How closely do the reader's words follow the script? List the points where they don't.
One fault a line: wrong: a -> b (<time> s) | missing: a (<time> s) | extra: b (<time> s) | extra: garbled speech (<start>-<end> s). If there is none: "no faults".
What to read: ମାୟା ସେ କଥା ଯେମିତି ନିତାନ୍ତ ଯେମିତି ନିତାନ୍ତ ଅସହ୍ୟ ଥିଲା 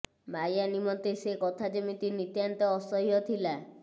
extra: ନିମନ୍ତେ (0.7 s)
missing: ଯେମିତି ନିତାନ୍ତ (2.7 s)